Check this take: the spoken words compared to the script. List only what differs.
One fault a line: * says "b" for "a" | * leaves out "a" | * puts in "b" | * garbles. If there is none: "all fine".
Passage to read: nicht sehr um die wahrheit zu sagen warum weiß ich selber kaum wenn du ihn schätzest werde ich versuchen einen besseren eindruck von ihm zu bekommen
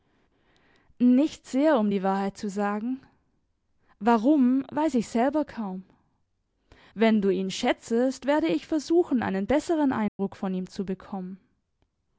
all fine